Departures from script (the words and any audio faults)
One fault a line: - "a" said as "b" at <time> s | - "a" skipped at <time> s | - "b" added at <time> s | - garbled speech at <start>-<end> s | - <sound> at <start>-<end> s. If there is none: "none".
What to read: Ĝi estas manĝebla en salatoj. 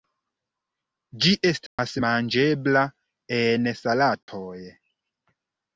- dropout at 1.7-1.8 s
- dropout at 4.2-4.3 s